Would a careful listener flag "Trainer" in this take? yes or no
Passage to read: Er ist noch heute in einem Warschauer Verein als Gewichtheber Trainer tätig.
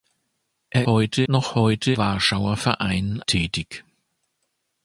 yes